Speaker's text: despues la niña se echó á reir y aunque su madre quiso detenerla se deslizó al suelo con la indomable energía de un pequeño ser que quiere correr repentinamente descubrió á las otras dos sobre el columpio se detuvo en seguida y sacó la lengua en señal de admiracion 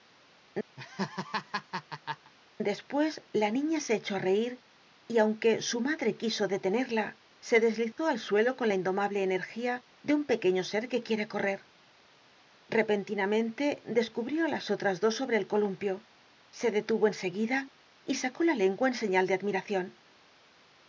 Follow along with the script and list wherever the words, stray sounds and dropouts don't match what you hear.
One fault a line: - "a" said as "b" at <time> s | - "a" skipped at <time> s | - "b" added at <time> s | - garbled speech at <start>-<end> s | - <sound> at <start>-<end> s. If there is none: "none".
- laugh at 0.8-2.3 s